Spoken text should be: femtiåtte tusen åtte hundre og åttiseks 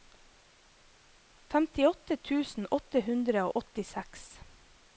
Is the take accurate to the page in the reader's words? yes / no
yes